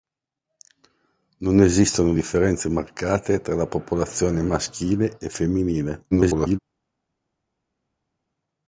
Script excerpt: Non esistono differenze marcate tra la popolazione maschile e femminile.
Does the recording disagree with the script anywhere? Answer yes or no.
yes